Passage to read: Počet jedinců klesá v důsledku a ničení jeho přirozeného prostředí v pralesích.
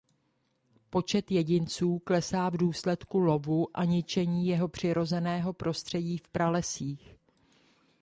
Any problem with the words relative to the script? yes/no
yes